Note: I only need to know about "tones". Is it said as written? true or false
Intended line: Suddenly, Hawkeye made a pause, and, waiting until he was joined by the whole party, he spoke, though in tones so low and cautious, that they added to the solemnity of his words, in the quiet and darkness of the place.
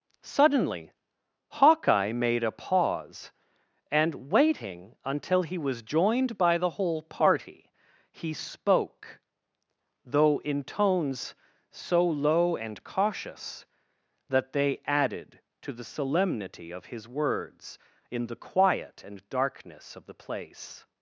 true